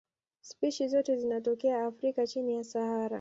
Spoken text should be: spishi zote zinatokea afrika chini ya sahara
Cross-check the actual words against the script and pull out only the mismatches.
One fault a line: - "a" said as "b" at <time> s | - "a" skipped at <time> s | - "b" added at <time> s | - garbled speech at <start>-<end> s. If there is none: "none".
none